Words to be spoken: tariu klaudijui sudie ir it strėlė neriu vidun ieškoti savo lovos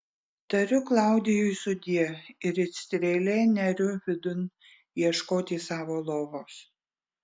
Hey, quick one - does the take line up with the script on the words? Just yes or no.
yes